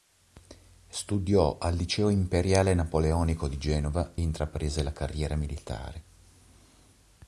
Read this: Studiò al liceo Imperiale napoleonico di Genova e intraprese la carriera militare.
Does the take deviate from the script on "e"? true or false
true